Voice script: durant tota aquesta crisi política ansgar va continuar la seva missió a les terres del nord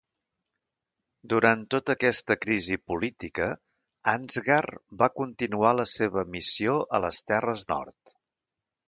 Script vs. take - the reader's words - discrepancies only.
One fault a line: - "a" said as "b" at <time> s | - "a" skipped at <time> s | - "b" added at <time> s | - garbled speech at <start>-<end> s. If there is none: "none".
- "del" skipped at 7.7 s